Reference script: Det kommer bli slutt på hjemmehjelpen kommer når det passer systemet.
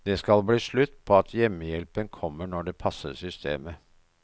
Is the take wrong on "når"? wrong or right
right